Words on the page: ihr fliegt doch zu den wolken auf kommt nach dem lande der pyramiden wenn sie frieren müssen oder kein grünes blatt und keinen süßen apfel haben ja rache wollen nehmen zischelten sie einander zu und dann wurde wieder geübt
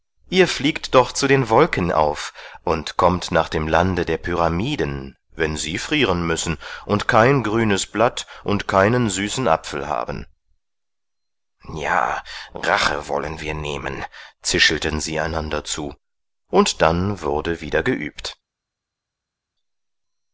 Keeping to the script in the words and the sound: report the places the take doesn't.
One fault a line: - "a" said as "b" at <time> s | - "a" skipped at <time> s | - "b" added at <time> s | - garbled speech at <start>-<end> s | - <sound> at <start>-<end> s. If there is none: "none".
- "und" added at 2.6 s
- "oder" said as "und" at 6.9 s
- "wir" added at 13.4 s